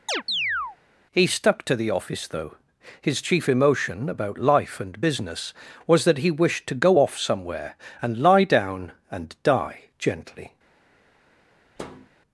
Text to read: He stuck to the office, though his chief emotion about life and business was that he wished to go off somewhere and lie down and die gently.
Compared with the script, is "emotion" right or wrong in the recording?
right